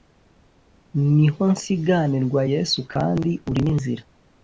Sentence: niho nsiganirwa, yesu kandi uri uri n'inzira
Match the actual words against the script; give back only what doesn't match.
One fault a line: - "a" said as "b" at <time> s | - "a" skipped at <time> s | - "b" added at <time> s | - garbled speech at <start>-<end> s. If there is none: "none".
- "uri" skipped at 3.6 s